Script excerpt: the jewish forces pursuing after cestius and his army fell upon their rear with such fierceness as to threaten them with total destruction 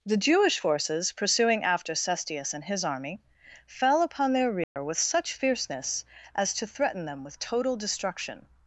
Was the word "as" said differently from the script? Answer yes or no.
no